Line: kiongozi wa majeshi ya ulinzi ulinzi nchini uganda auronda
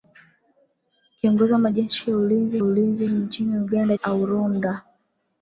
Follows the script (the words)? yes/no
yes